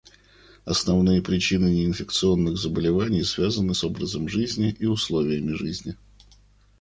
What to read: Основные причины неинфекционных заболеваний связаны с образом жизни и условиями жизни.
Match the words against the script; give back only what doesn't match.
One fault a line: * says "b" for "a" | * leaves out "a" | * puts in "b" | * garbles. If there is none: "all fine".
all fine